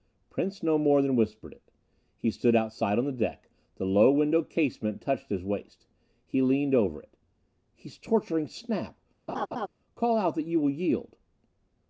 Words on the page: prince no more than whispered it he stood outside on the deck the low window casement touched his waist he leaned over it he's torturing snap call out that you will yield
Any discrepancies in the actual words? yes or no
no